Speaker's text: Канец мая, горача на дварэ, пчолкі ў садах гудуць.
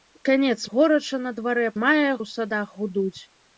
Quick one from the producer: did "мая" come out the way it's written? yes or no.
no